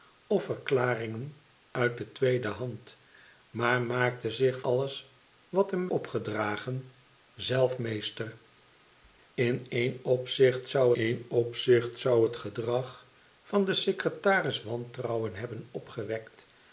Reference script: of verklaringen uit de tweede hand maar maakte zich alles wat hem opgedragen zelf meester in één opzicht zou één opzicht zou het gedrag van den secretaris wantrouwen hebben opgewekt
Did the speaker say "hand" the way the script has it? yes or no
yes